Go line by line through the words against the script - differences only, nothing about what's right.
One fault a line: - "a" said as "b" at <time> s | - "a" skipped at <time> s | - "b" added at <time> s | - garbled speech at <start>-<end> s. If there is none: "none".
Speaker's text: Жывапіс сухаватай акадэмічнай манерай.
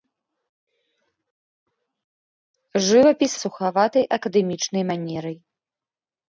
none